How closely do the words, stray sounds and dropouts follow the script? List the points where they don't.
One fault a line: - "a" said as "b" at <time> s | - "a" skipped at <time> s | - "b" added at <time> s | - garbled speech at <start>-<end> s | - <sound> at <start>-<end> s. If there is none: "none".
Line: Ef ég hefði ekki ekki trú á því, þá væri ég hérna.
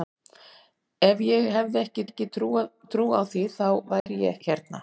- dropout at 4.0-4.1 s